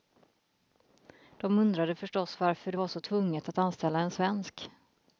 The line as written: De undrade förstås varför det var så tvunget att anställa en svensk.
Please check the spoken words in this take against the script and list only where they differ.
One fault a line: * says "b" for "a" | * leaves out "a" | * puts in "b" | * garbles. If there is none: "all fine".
all fine